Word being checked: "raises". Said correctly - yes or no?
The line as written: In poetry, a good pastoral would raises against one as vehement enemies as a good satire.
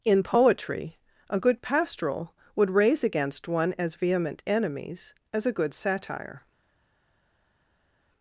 no